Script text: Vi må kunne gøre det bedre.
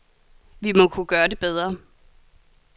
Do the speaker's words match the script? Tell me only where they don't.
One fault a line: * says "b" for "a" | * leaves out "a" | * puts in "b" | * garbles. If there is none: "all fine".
all fine